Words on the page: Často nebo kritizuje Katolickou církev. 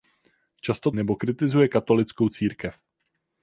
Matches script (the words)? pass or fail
pass